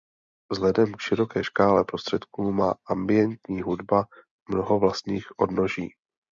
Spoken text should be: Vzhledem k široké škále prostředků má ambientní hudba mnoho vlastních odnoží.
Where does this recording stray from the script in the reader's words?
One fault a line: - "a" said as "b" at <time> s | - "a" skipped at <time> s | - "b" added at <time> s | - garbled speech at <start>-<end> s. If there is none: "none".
none